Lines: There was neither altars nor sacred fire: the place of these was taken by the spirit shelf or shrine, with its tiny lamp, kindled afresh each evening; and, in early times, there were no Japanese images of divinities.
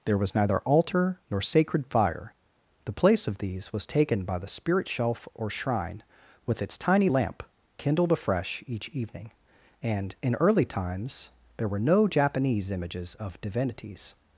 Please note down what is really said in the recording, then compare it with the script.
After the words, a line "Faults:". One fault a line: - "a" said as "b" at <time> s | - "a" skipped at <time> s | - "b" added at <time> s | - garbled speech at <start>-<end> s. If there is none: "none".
There was neither altar nor sacred fire: the place of these was taken by the spirit shelf or shrine, with its tiny lamp, kindled afresh each evening; and, in early times, there were no Japanese images of divinities.
Faults:
- "altars" said as "altar" at 0.6 s